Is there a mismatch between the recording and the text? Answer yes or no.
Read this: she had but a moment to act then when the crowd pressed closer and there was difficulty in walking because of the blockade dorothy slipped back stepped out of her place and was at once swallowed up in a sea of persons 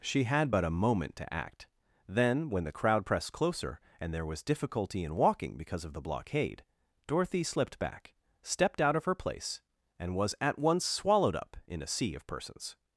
no